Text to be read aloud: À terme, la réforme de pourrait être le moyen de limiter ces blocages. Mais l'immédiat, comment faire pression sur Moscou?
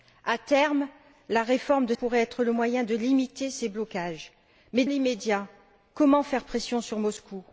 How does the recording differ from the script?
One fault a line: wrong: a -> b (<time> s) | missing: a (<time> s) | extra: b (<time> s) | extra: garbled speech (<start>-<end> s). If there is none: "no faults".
no faults